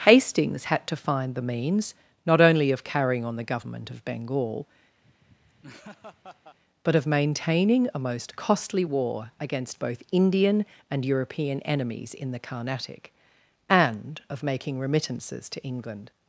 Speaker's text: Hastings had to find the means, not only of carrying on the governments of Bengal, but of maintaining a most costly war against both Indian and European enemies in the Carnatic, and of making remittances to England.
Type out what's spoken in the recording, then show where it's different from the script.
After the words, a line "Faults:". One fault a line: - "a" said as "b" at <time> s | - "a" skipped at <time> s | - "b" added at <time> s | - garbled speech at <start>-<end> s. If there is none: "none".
Hastings had to find the means, not only of carrying on the government of Bengal, but of maintaining a most costly war against both Indian and European enemies in the Carnatic, and of making remittances to England.
Faults:
- "governments" said as "government" at 3.4 s